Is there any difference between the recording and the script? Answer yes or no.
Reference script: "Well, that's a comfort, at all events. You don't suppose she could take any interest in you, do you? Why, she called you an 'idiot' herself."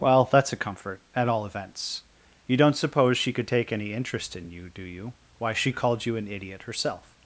no